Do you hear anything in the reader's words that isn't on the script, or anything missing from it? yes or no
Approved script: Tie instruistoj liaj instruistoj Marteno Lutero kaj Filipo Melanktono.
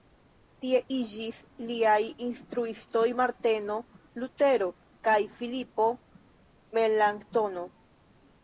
yes